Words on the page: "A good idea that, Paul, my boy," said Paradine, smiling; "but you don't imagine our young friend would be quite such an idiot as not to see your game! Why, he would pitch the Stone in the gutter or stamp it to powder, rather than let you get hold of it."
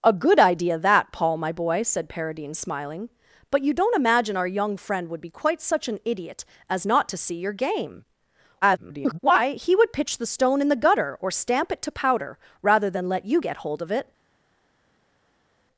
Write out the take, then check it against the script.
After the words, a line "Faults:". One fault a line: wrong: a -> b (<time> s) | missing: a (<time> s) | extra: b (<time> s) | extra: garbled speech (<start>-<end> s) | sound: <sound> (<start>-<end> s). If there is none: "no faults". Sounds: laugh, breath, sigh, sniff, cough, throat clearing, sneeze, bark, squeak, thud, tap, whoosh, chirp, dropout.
"A good idea that, Paul, my boy," said Paradine, smiling; "but you don't imagine our young friend would be quite such an idiot as not to see your game! [garbled] Why, he would pitch the Stone in the gutter or stamp it to powder, rather than let you get hold of it."
Faults:
extra: garbled speech (8.6-9.2 s)